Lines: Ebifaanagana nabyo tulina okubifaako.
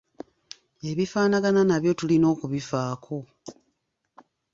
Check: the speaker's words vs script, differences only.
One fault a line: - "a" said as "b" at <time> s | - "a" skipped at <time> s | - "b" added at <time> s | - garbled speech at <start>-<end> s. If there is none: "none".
none